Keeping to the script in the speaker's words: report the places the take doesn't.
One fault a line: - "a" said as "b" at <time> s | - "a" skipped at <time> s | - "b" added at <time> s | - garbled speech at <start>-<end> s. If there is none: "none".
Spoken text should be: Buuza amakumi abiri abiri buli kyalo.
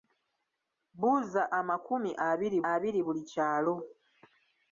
none